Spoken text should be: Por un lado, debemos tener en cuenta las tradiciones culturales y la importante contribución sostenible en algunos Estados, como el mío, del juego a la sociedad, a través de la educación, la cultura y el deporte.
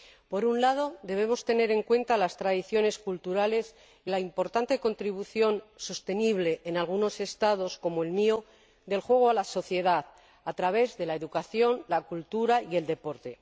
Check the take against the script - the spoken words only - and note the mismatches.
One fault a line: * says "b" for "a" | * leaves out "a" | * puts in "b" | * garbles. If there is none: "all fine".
all fine